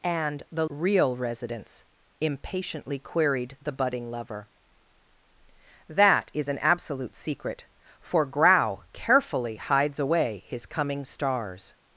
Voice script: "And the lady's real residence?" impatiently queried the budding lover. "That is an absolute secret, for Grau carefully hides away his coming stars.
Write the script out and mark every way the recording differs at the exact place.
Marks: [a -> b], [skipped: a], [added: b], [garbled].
"And the [skipped: lady's] real residence?" impatiently queried the budding lover. "That is an absolute secret, for Grau carefully hides away his coming stars.